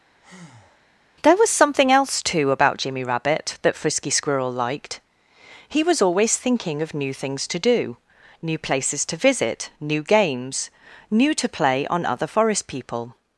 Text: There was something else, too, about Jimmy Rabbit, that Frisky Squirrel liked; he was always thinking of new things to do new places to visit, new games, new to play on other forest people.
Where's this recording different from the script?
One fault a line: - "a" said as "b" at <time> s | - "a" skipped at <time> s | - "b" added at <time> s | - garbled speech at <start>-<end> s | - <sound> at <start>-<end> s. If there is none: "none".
- breath at 0.2-0.9 s